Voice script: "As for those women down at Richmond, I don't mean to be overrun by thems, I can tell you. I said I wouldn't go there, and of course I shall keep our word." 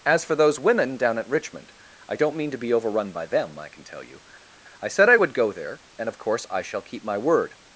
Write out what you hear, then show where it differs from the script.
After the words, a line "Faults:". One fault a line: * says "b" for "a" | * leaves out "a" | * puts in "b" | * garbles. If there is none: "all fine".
"As for those women down at Richmond, I don't mean to be overrun by them, I can tell you. I said I would go there, and of course I shall keep my word."
Faults:
* says "them" for "thems"
* says "would" for "wouldn't"
* says "my" for "our"